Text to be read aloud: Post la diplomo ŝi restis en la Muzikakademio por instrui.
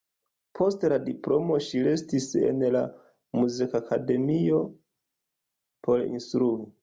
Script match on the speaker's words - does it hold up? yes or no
yes